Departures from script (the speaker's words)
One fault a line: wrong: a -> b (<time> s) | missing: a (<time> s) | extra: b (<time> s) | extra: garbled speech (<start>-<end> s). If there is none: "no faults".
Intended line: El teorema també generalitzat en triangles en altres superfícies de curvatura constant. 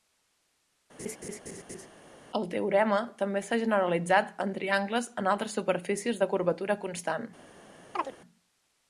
extra: s'ha (3.5 s)